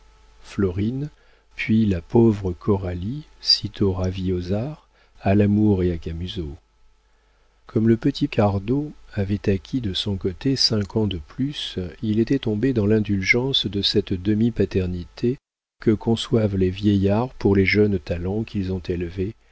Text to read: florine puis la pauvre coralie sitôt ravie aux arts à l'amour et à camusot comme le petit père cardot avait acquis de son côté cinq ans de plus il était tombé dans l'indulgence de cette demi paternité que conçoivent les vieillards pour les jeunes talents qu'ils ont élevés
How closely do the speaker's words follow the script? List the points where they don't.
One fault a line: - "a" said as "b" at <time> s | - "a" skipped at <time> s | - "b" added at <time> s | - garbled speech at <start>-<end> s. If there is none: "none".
- "père" skipped at 8.3 s